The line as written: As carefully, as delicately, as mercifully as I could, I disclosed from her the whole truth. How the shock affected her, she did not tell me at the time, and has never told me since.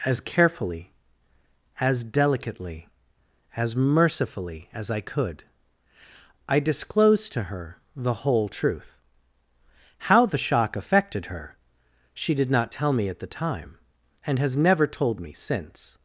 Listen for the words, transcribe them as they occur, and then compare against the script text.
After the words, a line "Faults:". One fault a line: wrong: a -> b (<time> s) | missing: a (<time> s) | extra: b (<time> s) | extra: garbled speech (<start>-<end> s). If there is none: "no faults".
As carefully, as delicately, as mercifully as I could, I disclosed to her the whole truth. How the shock affected her, she did not tell me at the time, and has never told me since.
Faults:
wrong: from -> to (7.3 s)